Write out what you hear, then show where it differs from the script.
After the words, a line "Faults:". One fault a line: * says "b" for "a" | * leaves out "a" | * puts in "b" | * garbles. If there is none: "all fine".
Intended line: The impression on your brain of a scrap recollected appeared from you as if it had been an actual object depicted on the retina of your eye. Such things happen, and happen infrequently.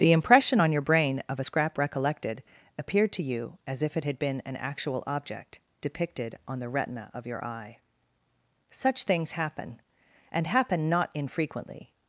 The impression on your brain of a scrap recollected appeared to you as if it had been an actual object depicted on the retina of your eye. Such things happen, and happen not infrequently.
Faults:
* says "to" for "from"
* puts in "not"